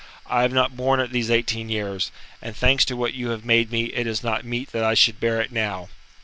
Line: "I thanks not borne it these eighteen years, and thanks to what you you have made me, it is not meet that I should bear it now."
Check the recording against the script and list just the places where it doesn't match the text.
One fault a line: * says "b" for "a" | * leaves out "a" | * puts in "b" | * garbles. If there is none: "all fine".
* says "have" for "thanks"
* leaves out "you"